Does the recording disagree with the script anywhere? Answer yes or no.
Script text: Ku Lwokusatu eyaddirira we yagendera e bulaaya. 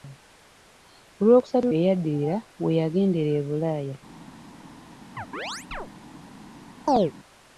no